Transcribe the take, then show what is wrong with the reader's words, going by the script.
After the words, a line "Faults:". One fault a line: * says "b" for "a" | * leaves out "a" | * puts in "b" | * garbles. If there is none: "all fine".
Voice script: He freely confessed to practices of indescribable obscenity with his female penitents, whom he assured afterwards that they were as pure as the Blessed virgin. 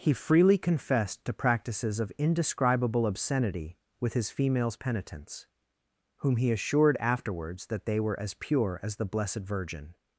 He freely confessed to practices of indescribable obscenity with his females penitents, whom he assured afterwards that they were as pure as the Blessed virgin.
Faults:
* says "females" for "female"